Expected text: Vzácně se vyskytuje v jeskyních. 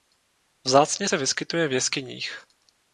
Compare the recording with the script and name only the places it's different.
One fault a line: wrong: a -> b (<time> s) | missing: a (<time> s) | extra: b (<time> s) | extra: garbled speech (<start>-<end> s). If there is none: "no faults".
no faults